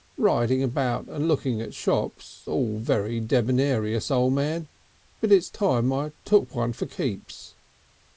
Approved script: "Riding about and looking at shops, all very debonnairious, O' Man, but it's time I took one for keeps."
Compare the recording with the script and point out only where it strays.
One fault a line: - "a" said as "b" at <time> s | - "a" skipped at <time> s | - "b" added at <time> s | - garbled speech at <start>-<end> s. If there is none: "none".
none